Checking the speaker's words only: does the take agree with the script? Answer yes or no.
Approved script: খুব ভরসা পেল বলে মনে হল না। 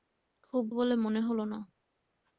no